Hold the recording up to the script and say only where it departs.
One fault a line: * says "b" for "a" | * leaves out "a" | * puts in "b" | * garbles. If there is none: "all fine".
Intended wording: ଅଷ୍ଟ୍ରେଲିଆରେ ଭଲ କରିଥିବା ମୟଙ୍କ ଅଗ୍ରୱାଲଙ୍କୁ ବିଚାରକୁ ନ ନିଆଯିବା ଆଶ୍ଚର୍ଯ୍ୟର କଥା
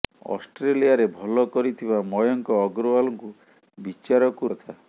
* leaves out "ନ ନିଆଯିବା ଆଶ୍ଚର୍ଯ୍ୟର"